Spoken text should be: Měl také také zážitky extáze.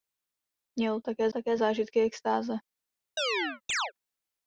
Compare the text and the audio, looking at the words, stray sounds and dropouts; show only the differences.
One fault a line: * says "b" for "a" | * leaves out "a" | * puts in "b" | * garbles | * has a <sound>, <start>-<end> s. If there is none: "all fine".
* has a chirp, 3.2-3.9 s